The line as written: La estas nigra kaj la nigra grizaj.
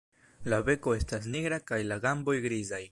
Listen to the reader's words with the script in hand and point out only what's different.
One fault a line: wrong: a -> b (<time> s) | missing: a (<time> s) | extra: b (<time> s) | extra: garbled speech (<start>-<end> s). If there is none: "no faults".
extra: beko (0.7 s)
wrong: nigra -> gamboj (2.1 s)